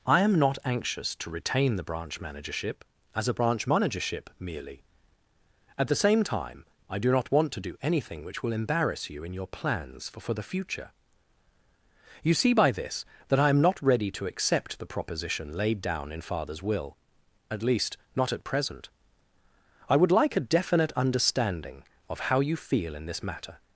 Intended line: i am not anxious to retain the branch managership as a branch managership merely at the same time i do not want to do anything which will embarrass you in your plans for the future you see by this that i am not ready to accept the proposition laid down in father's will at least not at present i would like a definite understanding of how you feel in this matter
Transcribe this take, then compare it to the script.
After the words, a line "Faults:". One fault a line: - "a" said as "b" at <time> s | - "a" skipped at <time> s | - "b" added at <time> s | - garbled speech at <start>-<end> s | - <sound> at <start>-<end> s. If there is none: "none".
i am not anxious to retain the branch managership as a branch managership merely at the same time i do not want to do anything which will embarrass you in your plans for for the future you see by this that i am not ready to accept the proposition laid down in father's will at least not at present i would like a definite understanding of how you feel in this matter
Faults:
- "for" added at 10.2 s